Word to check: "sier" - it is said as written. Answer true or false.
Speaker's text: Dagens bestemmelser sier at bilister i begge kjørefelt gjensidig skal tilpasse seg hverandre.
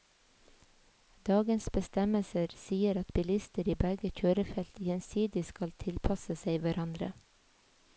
true